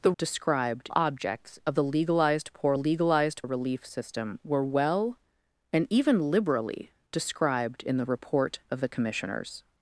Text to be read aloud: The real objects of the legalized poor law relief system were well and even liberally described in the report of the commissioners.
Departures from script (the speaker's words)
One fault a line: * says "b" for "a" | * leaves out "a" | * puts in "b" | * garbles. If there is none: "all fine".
* says "described" for "real"
* says "legalized" for "law"